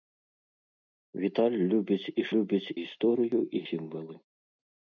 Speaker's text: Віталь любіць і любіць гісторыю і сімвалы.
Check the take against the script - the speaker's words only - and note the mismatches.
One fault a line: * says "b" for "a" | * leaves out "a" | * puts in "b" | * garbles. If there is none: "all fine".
all fine